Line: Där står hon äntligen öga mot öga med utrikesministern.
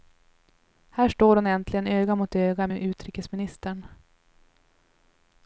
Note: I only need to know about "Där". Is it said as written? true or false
false